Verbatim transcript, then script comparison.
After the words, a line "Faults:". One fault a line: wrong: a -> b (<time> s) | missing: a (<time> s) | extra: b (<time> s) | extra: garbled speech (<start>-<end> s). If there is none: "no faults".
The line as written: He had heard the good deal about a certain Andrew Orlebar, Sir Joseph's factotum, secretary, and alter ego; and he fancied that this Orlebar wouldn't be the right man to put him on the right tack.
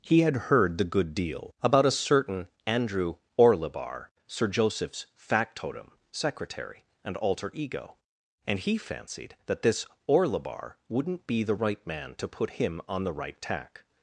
He had heard the good deal about a certain Andrew Orlebar, Sir Joseph's factotum, secretary, and alter ego; and he fancied that this Orlebar wouldn't be the right man to put him on the right tack.
Faults:
no faults